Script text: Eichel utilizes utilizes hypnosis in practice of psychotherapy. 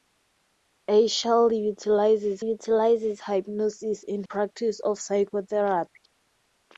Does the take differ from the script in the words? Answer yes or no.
no